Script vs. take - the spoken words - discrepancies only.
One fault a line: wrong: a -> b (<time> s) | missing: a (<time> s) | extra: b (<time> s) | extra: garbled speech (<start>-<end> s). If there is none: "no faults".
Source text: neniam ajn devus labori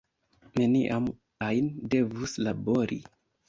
no faults